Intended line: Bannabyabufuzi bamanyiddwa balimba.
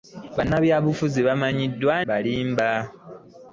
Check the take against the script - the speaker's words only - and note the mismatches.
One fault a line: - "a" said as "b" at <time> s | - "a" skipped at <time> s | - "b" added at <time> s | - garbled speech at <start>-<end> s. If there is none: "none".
none